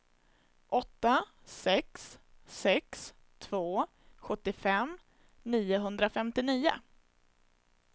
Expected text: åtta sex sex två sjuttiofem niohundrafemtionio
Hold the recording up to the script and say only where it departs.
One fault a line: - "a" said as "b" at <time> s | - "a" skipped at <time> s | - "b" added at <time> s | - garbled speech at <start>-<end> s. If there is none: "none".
none